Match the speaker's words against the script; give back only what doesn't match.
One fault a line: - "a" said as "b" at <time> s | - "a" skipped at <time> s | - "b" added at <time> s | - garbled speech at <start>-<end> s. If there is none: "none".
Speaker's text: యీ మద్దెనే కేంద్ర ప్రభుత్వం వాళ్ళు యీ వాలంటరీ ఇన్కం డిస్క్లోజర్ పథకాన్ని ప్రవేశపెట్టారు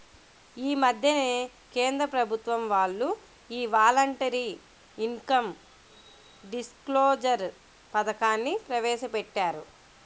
none